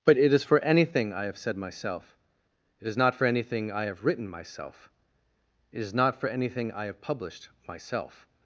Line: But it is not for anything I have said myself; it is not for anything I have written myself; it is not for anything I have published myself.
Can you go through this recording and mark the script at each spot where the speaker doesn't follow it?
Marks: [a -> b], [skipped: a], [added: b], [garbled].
But it is [skipped: not] for anything I have said myself; it is not for anything I have written myself; it is not for anything I have published myself.